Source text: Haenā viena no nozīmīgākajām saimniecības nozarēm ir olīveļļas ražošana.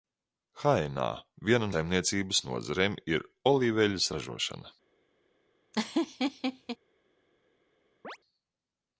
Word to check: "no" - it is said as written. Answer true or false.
false